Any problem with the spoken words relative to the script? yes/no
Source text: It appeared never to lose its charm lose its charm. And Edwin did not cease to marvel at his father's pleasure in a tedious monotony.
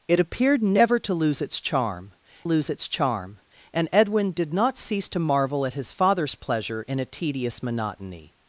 no